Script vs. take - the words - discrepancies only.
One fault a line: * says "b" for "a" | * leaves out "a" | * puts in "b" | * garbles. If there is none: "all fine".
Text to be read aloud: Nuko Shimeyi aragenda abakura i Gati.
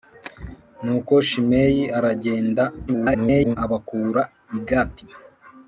* garbles